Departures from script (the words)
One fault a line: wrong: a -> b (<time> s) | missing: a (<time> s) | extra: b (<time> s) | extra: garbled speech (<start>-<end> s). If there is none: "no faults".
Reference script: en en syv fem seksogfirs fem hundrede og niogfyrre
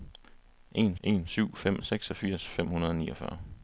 no faults